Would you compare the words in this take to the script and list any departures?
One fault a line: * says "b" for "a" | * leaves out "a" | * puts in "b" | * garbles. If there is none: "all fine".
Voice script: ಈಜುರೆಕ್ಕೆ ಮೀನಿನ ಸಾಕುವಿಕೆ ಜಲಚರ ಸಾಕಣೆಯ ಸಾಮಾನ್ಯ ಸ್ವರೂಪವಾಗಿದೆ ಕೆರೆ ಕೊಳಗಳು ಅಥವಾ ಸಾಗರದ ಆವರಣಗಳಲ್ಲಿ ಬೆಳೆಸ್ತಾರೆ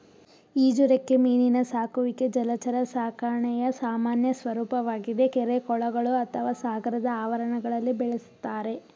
all fine